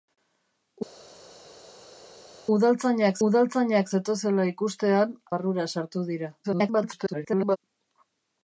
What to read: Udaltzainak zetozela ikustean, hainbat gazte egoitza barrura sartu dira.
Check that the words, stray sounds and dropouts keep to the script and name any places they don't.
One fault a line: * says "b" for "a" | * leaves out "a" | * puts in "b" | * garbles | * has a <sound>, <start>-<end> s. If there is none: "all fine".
* puts in "udaltzainak"
* leaves out "hainbat gazte egoitza"
* garbles